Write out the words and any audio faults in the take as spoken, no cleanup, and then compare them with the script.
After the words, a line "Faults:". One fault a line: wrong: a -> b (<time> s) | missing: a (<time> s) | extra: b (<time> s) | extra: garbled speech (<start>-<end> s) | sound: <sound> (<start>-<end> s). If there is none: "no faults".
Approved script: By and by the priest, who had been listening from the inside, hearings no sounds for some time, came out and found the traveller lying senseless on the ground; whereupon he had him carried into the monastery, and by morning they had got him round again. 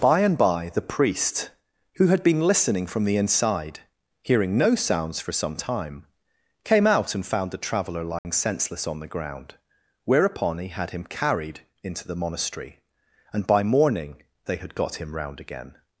By and by the priest, who had been listening from the inside, hearing no sounds for some time, came out and found the traveller lying senseless on the ground; whereupon he had him carried into the monastery, and by morning they had got him round again.
Faults:
wrong: hearings -> hearing (4.2 s)
sound: dropout (8.2-8.2 s)